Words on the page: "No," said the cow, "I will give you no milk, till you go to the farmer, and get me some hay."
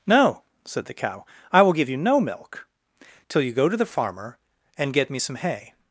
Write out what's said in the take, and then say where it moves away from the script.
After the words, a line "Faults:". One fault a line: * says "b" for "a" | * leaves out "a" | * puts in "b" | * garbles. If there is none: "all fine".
"No," said the cow, "I will give you no milk, till you go to the farmer, and get me some hay."
Faults:
all fine